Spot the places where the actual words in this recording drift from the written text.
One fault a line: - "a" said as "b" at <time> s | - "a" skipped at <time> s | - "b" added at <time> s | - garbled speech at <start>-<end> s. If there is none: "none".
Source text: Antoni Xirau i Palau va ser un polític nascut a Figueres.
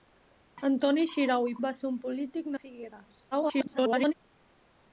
- "Palau" skipped at 1.5 s
- "nascut" skipped at 2.5 s
- garbled speech at 3.3-4.1 s